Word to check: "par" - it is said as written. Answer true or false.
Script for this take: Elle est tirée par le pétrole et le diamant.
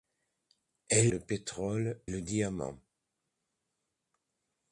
false